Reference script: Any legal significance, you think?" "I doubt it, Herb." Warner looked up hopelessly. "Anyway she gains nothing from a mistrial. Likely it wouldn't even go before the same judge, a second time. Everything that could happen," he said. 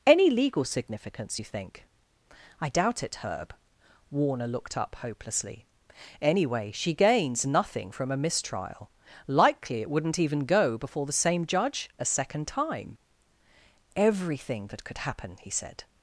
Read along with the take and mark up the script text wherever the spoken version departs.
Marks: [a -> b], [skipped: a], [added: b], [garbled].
Any legal significance, you think?" "I doubt it, Herb." Warner looked up hopelessly. "Anyway she gains nothing from a mistrial. Likely it wouldn't even go before the same judge, a second time. Everything that could happen," he said.